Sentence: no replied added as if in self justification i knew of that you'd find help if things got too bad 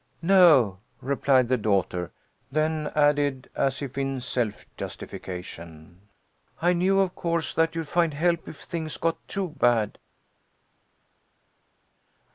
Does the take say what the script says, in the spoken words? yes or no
no